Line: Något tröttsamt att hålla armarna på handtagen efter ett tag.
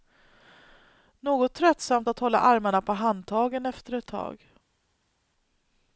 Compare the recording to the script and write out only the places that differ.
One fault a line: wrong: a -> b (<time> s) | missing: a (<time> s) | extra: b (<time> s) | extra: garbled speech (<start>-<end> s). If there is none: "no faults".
no faults